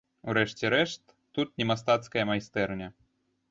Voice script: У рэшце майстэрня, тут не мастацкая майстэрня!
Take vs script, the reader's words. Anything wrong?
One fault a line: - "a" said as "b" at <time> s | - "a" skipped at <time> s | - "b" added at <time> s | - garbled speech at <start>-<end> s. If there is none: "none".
- "майстэрня" said as "рэшт" at 0.8 s